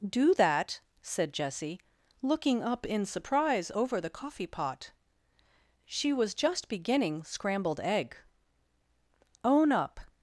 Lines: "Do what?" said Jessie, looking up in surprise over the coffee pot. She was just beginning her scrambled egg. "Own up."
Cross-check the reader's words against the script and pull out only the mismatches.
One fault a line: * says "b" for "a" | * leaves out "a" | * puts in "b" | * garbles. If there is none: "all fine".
* says "that" for "what"
* leaves out "her"